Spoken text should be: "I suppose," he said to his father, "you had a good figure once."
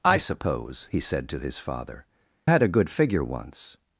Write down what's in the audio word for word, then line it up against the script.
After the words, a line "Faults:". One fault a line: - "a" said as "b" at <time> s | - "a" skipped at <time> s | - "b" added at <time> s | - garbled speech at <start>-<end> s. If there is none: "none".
"I suppose," he said to his father, "had a good figure once."
Faults:
- "you" skipped at 2.0 s